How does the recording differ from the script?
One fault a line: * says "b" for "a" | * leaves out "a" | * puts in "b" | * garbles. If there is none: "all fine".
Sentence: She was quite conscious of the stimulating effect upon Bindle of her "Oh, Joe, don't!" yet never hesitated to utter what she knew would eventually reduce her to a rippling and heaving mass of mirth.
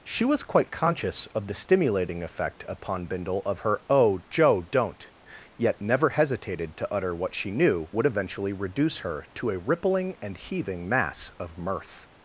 all fine